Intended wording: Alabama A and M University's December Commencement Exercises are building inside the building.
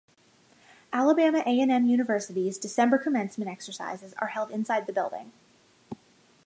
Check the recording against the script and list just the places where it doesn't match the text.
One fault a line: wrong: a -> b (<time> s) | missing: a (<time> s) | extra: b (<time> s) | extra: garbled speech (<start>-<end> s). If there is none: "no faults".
wrong: building -> held (4.3 s)